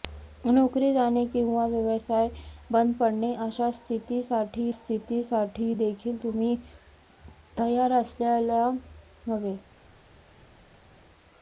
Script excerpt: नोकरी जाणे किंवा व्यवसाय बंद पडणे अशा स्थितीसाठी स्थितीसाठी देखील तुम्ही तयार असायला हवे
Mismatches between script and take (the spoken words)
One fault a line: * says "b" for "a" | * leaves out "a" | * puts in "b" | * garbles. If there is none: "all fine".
all fine